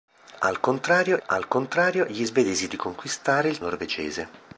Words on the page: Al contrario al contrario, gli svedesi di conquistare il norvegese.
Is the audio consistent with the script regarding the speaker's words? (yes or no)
yes